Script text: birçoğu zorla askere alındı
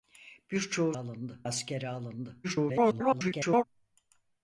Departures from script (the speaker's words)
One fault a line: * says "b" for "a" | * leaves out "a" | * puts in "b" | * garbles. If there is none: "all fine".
* says "alındı" for "zorla"
* garbles